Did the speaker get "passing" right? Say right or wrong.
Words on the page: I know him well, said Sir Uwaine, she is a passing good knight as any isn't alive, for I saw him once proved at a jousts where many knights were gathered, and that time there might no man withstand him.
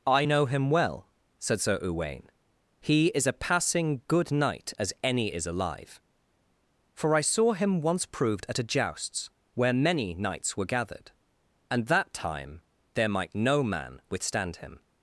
right